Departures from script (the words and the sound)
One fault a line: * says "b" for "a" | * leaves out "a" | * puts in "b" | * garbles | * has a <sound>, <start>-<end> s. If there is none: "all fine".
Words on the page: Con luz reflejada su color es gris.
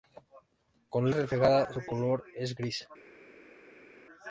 * leaves out "luz"